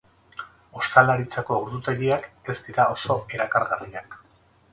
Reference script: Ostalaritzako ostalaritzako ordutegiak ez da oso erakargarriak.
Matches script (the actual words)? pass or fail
fail